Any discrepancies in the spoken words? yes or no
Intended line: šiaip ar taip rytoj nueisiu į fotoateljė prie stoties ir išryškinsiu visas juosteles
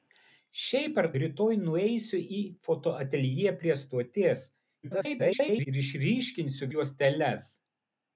yes